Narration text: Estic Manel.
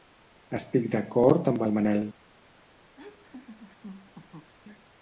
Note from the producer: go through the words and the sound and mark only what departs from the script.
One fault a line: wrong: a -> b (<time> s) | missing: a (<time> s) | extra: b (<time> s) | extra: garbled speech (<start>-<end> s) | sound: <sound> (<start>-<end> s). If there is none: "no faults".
extra: d'acord amb el (0.9 s)
sound: laugh (3.0-4.5 s)